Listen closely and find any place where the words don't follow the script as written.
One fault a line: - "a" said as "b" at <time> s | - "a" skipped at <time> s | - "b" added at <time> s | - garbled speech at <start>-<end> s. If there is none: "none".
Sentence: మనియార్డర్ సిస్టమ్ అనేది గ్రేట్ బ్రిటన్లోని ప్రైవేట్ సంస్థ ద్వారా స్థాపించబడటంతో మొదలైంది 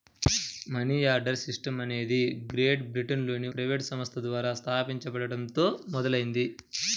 none